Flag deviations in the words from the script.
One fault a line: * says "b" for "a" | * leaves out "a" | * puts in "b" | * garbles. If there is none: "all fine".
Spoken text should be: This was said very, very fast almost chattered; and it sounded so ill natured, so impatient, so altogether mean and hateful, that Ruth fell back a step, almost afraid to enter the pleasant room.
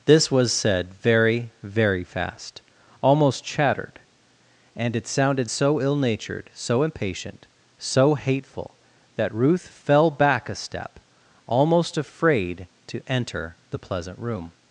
* leaves out "altogether mean and"